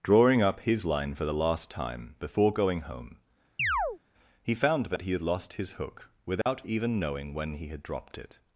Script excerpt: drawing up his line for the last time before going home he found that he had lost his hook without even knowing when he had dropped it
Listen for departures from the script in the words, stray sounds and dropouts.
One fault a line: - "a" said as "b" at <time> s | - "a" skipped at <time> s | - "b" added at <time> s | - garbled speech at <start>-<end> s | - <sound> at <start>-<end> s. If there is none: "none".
- chirp at 3.6-4.0 s
- dropout at 6.4-6.5 s